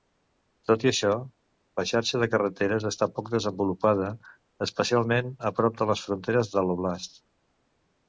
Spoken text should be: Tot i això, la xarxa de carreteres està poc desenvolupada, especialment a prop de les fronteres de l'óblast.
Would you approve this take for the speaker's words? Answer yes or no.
yes